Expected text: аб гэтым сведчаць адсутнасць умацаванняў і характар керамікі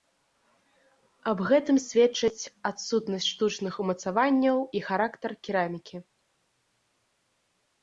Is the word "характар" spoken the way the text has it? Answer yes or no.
yes